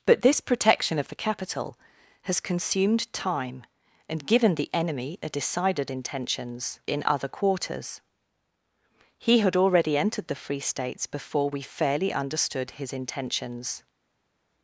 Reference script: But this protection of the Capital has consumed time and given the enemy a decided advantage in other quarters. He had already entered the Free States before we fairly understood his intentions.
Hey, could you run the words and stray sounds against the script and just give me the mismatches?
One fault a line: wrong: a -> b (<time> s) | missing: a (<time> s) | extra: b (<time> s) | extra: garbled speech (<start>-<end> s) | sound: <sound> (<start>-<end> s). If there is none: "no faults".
wrong: advantage -> intentions (5.9 s)